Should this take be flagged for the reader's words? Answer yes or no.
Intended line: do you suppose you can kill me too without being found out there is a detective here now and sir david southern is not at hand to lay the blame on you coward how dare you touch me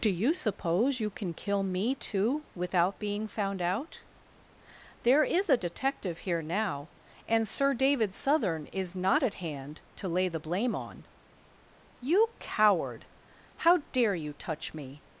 no